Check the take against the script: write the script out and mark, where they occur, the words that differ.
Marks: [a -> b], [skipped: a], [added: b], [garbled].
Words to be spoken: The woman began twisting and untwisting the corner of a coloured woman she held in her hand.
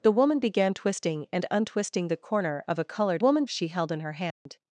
The woman began twisting and untwisting the corner of a coloured woman she held in her hand.